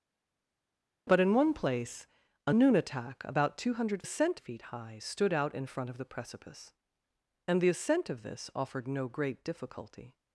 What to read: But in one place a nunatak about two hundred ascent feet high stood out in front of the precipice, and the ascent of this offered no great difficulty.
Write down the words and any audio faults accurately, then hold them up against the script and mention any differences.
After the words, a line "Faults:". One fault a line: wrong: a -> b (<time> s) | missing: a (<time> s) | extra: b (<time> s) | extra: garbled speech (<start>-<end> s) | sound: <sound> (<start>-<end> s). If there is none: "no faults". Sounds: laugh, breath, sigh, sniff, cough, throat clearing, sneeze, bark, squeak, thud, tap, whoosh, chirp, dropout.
But in one place a nunatak about two hundred ascent feet high stood out in front of the precipice, and the ascent of this offered no great difficulty.
Faults:
no faults